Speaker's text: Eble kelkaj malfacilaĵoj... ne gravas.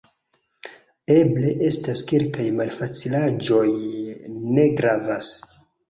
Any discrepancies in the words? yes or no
yes